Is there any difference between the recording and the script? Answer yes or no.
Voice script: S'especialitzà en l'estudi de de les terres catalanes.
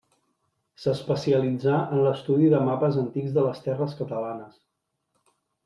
yes